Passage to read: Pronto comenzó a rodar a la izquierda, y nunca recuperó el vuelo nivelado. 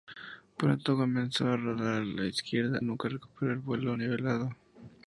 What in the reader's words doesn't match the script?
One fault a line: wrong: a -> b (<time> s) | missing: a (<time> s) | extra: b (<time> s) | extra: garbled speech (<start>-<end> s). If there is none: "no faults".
missing: y (2.8 s)